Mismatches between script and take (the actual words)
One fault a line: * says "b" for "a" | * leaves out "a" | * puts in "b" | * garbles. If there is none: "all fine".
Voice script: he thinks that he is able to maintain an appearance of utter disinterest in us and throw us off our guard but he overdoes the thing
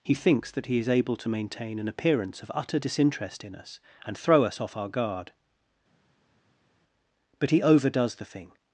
all fine